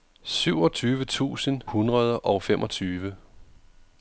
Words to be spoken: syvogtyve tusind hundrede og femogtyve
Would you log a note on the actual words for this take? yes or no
no